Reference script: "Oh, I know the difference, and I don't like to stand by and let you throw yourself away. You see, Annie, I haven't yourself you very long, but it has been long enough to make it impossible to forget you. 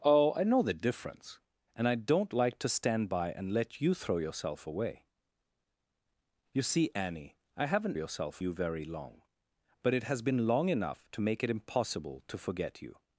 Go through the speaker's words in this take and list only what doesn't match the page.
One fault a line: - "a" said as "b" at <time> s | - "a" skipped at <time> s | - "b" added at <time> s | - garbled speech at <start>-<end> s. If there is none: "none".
none